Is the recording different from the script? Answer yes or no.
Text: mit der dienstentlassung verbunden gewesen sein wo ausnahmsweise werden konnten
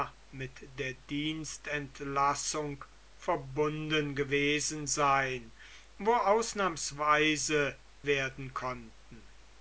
no